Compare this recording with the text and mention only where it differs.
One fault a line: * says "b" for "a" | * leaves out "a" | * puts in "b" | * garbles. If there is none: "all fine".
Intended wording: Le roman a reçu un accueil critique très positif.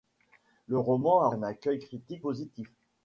* leaves out "reçu"
* leaves out "très"